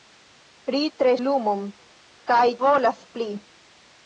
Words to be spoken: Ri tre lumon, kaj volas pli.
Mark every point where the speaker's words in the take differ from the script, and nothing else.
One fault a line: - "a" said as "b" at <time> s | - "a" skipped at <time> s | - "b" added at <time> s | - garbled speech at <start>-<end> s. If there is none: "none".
none